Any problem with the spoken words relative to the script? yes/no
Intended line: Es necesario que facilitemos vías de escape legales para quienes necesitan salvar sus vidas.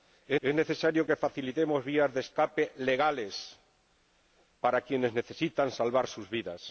yes